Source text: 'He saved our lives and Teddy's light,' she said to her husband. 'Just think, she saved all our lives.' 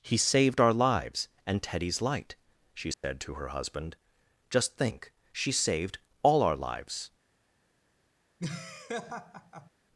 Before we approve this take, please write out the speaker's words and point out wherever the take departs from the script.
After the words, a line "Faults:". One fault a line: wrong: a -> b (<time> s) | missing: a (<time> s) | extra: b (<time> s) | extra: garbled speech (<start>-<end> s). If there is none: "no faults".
'He saved our lives and Teddy's light,' she said to her husband. 'Just think, she saved all our lives.'
Faults:
no faults